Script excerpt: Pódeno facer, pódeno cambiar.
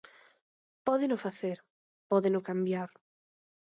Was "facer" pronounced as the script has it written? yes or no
yes